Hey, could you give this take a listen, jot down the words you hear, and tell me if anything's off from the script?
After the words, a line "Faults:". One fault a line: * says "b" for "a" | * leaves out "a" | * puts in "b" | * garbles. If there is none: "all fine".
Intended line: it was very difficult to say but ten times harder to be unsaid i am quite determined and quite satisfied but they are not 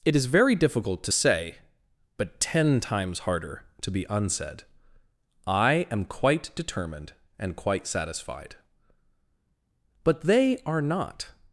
it is very difficult to say but ten times harder to be unsaid i am quite determined and quite satisfied but they are not
Faults:
* says "is" for "was"